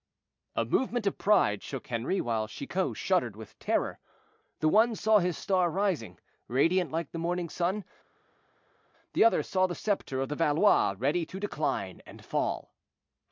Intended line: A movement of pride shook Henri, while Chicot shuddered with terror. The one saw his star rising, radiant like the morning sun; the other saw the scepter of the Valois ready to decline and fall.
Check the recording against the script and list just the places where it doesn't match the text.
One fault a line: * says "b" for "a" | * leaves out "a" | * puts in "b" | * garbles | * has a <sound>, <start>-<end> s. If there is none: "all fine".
all fine